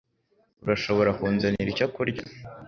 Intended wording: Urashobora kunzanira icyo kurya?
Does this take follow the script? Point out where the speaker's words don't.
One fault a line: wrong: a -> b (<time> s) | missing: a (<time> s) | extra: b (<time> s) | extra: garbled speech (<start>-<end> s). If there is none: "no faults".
no faults